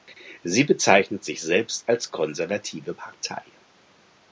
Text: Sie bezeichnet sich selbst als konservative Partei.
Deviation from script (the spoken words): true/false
false